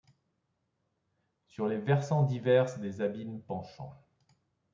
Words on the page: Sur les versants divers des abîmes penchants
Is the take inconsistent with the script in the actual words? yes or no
no